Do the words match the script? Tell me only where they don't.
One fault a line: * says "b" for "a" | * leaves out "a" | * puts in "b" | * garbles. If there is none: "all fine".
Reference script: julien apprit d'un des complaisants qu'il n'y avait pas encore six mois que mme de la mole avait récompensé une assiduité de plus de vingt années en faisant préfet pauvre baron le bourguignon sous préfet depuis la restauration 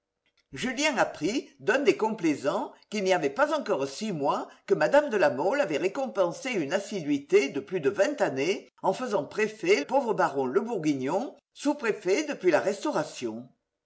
all fine